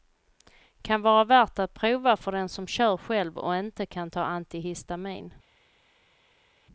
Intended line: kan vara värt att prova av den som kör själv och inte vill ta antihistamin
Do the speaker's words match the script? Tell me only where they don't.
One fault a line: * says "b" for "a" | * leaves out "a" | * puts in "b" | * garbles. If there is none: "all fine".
* says "för" for "av"
* says "kan" for "vill"